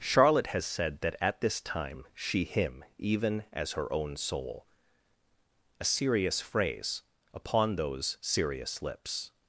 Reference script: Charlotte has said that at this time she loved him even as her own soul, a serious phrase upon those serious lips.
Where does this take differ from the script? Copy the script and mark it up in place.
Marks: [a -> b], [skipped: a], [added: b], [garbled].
Charlotte has said that at this time she [skipped: loved] him even as her own soul, a serious phrase upon those serious lips.